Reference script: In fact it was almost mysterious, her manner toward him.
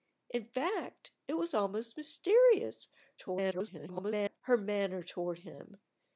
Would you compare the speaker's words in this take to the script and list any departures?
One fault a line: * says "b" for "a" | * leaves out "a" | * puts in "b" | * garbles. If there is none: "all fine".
* garbles